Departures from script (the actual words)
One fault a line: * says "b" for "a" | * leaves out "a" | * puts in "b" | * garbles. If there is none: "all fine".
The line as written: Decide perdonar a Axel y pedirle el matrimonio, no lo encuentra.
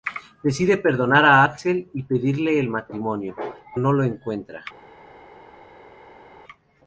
all fine